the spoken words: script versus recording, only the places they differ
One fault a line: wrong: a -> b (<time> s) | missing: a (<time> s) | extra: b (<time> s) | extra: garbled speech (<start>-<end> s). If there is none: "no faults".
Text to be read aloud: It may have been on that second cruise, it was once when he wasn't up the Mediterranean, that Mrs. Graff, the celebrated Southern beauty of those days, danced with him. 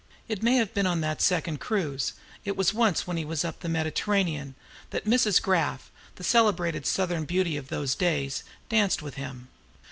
wrong: wasn't -> was (3.2 s)